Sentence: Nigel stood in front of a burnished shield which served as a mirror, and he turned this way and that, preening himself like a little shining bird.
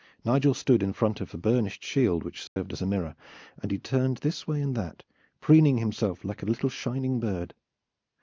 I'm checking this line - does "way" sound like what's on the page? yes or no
yes